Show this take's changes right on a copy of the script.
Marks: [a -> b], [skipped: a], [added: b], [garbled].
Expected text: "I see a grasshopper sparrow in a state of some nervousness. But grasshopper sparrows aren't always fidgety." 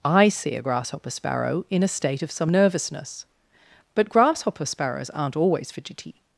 "I see a grasshopper sparrow in a state of some nervousness. But grasshopper sparrows aren't always fidgety."